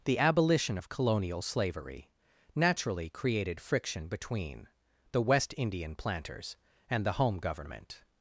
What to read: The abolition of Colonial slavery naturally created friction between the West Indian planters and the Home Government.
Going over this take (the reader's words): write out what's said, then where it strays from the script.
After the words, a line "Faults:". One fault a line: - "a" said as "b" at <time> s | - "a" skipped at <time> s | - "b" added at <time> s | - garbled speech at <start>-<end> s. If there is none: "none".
The abolition of Colonial slavery naturally created friction between the West Indian planters and the Home Government.
Faults:
none